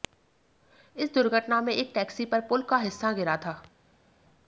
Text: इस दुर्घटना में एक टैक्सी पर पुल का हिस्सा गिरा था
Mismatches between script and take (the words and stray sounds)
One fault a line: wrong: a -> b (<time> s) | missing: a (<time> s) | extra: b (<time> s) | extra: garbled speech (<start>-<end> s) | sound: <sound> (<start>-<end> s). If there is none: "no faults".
no faults